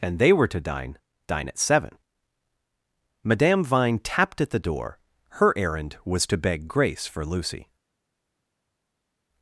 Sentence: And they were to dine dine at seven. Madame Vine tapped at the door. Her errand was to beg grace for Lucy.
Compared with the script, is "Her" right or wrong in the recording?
right